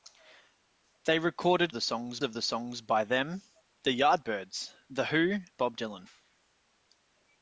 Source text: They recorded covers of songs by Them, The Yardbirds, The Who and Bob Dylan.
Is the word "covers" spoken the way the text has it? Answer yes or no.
no